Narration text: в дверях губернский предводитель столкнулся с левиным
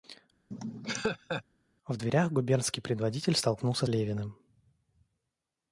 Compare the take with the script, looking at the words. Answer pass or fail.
fail